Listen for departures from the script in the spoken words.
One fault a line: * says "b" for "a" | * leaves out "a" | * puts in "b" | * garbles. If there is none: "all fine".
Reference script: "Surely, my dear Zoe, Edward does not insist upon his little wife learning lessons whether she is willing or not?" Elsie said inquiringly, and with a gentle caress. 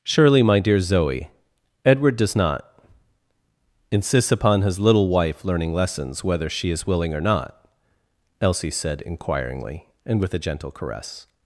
* says "insists" for "insist"